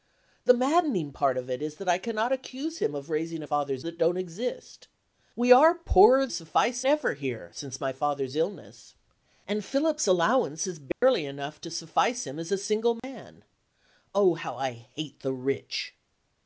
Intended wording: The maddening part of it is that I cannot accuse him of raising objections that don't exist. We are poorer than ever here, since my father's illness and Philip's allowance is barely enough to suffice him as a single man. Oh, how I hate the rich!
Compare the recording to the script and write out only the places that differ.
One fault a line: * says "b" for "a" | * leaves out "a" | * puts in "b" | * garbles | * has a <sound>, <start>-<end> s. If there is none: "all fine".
* says "father's" for "objections"
* says "suffice" for "than"
* has a dropout, 10.9-11.0 s
* has a dropout, 13.0-13.0 s